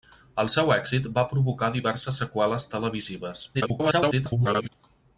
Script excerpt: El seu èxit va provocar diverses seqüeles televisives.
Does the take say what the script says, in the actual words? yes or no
no